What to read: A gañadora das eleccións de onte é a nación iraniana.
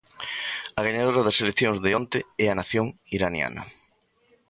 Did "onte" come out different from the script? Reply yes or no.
no